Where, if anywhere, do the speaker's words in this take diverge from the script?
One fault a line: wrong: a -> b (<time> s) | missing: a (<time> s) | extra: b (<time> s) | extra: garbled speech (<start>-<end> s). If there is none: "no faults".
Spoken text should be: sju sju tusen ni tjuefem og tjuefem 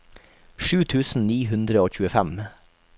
missing: sju (0.8 s)
wrong: tjuefem -> hundre (1.5 s)